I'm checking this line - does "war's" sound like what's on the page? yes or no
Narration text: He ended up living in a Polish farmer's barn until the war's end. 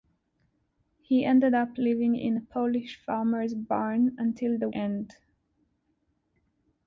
no